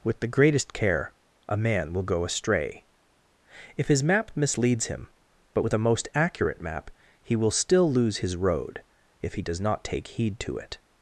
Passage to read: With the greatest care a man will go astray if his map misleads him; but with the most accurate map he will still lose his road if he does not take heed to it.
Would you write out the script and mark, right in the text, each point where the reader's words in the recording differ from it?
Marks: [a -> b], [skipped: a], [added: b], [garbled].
With the greatest care a man will go astray if his map misleads him; but with [the -> a] most accurate map he will still lose his road if he does not take heed to it.